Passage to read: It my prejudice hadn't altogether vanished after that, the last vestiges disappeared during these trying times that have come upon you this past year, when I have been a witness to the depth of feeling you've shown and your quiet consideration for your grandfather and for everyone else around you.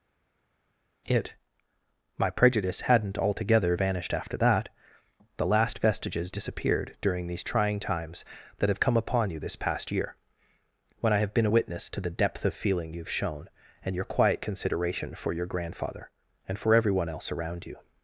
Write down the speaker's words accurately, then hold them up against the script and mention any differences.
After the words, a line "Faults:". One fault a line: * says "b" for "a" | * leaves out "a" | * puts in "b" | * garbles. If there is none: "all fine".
It my prejudice hadn't altogether vanished after that, the last vestiges disappeared during these trying times that have come upon you this past year, when I have been a witness to the depth of feeling you've shown and your quiet consideration for your grandfather and for everyone else around you.
Faults:
all fine